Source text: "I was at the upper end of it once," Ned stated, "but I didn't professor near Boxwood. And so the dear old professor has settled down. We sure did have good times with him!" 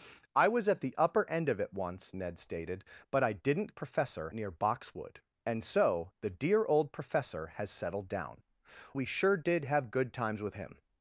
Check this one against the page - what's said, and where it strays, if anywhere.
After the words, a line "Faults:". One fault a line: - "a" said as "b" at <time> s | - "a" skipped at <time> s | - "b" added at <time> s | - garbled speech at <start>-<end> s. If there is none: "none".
"I was at the upper end of it once," Ned stated, "but I didn't professor near Boxwood. And so the dear old professor has settled down. We sure did have good times with him!"
Faults:
none